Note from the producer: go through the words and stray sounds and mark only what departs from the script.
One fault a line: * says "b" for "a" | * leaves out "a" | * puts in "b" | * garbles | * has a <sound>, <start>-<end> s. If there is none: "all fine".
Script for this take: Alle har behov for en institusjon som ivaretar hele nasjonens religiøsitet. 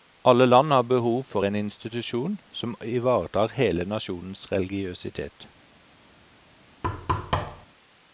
* puts in "land"
* has a thud, 6.8-7.7 s